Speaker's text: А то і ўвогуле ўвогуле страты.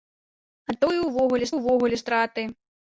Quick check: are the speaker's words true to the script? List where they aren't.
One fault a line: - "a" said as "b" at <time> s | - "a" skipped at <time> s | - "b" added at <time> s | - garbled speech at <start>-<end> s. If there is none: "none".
none